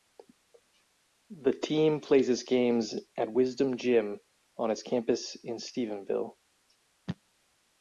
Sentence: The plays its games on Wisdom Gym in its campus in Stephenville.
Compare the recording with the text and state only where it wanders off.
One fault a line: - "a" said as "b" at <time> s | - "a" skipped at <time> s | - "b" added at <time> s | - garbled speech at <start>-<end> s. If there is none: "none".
- "team" added at 1.5 s
- "on" said as "at" at 3.2 s
- "in" said as "on" at 4.5 s